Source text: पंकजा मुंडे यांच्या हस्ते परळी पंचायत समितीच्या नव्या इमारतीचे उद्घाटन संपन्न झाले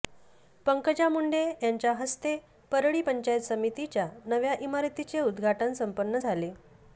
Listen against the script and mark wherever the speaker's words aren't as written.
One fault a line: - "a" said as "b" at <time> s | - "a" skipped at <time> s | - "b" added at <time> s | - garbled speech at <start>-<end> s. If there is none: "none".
none